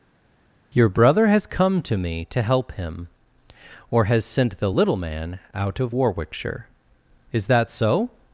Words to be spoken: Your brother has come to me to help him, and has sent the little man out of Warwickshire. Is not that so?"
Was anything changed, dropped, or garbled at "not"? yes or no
yes